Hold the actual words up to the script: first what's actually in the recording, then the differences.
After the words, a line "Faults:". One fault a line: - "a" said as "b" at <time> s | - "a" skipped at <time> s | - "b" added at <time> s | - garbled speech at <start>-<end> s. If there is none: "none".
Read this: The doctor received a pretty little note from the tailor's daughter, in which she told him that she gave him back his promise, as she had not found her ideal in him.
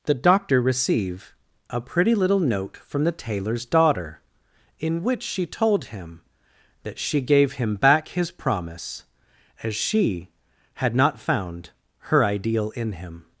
The doctor receive a pretty little note from the tailor's daughter, in which she told him that she gave him back his promise, as she had not found her ideal in him.
Faults:
- "received" said as "receive" at 0.6 s